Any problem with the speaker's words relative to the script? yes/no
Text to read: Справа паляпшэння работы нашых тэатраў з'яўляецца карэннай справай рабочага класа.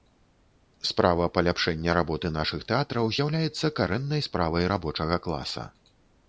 no